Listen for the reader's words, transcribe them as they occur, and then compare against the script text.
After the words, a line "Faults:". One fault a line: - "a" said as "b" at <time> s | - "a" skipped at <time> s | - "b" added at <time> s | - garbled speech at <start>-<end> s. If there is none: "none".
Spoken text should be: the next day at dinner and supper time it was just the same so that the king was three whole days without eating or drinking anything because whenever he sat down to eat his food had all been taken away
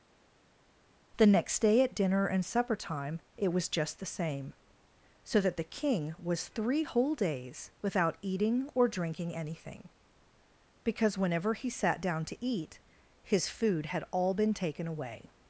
the next day at dinner and supper time it was just the same so that the king was three whole days without eating or drinking anything because whenever he sat down to eat his food had all been taken away
Faults:
none